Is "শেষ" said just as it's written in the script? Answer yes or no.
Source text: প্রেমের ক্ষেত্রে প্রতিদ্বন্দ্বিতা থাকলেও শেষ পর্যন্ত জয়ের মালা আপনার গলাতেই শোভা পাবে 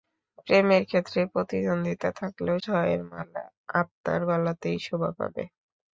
no